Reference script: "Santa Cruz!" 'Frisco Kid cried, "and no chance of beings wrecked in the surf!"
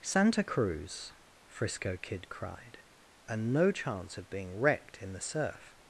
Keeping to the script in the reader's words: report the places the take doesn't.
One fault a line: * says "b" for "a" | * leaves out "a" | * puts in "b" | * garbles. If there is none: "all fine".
* says "being" for "beings"